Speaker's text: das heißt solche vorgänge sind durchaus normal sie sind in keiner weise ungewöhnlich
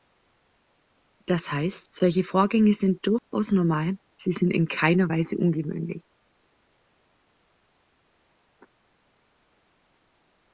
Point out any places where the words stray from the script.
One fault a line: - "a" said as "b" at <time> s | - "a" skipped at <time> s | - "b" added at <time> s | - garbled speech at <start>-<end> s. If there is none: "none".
none